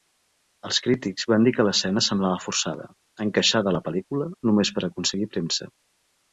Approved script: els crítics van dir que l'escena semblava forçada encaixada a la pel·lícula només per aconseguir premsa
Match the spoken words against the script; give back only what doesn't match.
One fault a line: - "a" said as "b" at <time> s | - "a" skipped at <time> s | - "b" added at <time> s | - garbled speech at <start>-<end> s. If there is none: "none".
none